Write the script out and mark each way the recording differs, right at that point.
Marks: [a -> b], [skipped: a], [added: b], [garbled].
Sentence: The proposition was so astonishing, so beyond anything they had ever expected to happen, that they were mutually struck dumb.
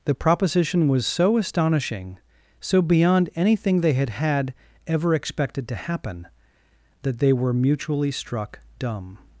The proposition was so astonishing, so beyond anything they had [added: had] ever expected to happen, that they were mutually struck dumb.